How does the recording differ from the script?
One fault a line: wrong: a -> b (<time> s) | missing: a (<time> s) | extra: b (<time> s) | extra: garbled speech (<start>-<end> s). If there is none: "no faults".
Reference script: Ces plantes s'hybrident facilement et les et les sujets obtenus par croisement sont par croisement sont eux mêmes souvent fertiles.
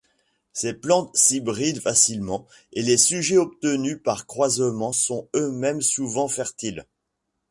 missing: et les (3.0 s)
missing: par croisement sont (5.3 s)